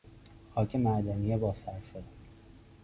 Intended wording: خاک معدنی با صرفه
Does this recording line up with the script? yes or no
yes